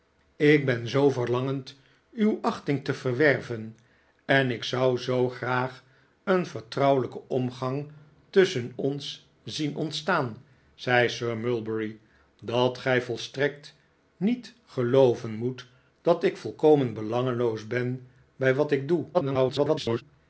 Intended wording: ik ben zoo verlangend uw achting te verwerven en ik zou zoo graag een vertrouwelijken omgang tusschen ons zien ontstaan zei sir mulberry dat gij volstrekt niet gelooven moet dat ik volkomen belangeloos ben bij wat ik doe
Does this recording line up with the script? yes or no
no